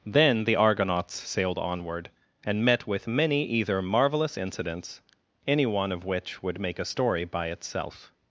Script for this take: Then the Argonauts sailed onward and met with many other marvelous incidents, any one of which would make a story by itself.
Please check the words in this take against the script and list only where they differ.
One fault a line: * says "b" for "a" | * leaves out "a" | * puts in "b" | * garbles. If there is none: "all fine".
* says "either" for "other"